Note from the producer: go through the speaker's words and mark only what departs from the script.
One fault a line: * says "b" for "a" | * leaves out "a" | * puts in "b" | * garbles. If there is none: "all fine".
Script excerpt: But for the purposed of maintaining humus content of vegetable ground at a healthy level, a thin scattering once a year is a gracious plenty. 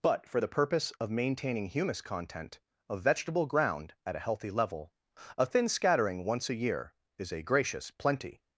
* says "purpose" for "purposed"